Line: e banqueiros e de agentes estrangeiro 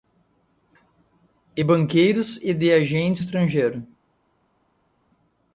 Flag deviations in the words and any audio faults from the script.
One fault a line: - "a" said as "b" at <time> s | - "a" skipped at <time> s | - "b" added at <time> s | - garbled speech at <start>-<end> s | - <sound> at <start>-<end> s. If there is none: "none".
none